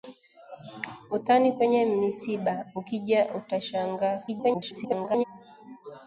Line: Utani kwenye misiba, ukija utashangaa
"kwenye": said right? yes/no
yes